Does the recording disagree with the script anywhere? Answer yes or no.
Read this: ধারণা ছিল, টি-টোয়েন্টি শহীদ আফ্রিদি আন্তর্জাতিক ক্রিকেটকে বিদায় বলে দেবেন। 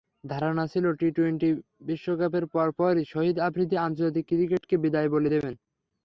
yes